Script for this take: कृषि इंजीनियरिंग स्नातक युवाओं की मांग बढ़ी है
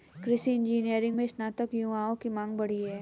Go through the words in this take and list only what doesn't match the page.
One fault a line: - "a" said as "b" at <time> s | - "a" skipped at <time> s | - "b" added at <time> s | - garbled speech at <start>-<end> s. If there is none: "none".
- "में" added at 1.1 s